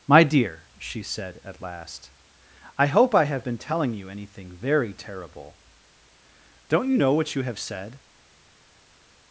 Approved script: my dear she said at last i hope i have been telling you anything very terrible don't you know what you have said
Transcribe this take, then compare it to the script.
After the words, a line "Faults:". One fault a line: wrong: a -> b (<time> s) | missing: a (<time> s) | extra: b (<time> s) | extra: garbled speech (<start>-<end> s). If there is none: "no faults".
my dear she said at last i hope i have been telling you anything very terrible don't you know what you have said
Faults:
no faults